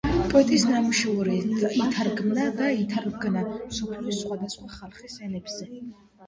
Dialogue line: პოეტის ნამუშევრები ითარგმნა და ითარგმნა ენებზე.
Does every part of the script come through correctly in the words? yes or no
no